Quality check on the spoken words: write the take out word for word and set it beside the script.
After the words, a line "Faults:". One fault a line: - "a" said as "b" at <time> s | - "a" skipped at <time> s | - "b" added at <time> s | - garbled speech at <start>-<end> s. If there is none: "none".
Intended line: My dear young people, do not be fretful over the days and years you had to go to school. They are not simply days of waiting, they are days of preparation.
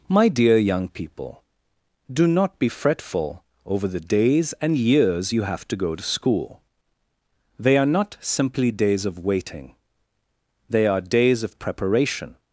My dear young people, do not be fretful over the days and years you have to go to school. They are not simply days of waiting, they are days of preparation.
Faults:
- "had" said as "have" at 5.4 s